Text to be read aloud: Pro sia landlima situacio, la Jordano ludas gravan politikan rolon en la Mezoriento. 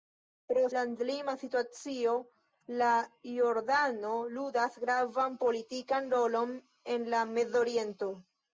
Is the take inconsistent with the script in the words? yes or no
yes